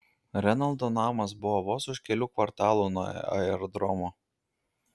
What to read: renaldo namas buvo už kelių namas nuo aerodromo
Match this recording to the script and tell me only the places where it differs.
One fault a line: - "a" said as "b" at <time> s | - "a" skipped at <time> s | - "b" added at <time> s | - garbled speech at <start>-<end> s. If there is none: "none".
- "vos" added at 1.7 s
- "namas" said as "kvartalų" at 2.4 s